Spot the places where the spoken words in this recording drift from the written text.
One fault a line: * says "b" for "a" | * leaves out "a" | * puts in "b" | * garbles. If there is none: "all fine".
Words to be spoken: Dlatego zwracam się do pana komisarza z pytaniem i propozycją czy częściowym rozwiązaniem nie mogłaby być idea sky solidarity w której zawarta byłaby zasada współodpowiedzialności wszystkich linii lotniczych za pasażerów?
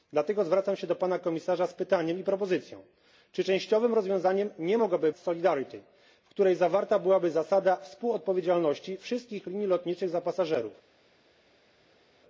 * leaves out "być idea sky"